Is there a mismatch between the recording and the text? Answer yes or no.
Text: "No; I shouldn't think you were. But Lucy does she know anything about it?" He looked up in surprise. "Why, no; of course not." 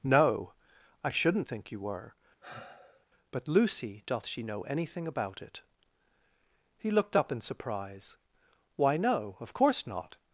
yes